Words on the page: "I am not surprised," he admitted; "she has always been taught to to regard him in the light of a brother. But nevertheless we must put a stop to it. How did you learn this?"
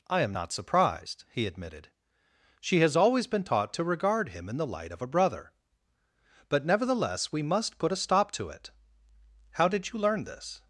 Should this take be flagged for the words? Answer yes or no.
yes